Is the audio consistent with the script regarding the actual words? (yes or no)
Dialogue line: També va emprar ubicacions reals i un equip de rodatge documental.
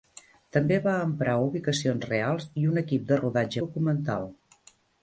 yes